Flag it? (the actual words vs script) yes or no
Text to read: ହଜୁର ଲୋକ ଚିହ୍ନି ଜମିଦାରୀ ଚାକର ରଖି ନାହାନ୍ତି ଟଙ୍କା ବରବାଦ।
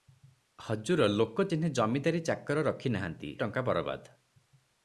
no